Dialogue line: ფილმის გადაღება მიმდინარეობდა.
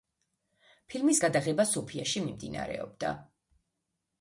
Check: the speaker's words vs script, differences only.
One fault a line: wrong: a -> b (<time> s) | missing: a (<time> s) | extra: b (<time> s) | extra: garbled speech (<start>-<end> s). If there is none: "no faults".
extra: სოფიაში (1.7 s)